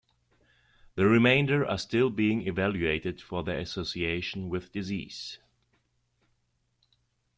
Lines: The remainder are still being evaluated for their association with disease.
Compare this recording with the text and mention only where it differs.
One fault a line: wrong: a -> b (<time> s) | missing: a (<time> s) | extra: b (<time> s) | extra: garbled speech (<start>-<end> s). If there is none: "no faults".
no faults